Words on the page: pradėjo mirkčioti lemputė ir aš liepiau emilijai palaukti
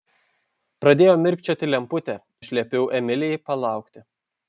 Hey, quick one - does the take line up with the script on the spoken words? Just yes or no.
no